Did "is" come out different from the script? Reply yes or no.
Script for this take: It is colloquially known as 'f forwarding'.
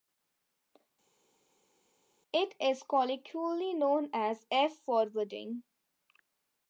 no